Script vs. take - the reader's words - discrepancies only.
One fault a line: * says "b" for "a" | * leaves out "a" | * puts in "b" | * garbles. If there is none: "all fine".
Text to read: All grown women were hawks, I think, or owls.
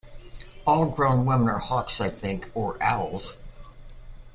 * says "are" for "were"